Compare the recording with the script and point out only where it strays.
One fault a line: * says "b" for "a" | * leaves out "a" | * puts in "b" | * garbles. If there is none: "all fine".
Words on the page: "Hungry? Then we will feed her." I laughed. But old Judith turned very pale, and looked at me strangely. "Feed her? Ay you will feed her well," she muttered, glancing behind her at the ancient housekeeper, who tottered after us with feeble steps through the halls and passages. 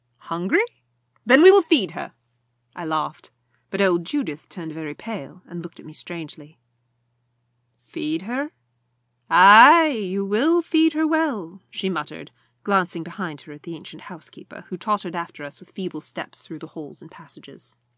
all fine